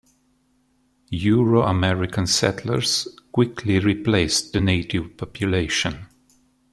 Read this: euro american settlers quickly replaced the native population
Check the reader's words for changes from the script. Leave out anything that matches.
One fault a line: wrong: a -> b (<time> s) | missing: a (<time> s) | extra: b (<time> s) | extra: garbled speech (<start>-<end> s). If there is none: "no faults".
no faults